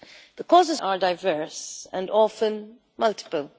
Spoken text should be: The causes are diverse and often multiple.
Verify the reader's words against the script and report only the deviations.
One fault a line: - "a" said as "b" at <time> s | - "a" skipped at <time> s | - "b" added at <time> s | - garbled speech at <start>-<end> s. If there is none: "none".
none